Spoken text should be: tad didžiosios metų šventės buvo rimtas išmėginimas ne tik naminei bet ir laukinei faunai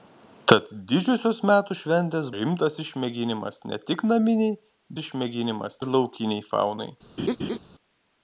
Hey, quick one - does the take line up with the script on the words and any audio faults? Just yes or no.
no